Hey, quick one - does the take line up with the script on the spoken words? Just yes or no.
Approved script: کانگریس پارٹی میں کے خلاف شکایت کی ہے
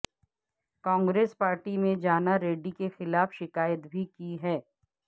no